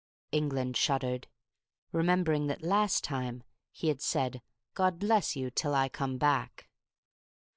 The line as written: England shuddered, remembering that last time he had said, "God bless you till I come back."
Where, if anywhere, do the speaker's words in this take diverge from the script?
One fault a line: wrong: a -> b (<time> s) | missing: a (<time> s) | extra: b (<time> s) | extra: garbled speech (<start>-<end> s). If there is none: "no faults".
no faults